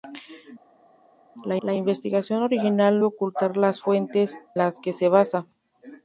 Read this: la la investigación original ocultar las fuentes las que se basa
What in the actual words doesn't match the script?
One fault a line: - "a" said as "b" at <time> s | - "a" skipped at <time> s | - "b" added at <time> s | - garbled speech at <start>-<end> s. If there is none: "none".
none